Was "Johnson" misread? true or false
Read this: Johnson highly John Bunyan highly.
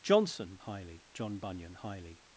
false